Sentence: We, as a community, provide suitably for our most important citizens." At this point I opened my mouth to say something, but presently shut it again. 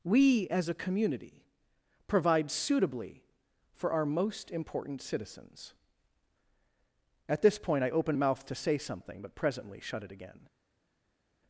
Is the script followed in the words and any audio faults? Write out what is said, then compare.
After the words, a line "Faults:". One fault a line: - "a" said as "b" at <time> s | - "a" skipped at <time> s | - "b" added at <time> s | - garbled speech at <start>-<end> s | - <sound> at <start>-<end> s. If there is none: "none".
We, as a community, provide suitably for our most important citizens." At this point I opened mouth to say something, but presently shut it again.
Faults:
- "my" skipped at 8.2 s